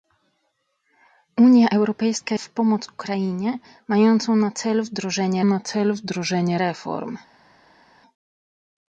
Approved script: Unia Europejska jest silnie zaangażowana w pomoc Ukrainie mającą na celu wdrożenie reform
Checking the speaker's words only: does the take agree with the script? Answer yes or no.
no